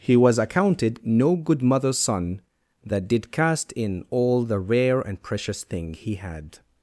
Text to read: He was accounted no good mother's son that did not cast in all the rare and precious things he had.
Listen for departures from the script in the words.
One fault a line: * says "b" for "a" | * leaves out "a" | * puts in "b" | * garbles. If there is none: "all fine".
* leaves out "not"
* says "thing" for "things"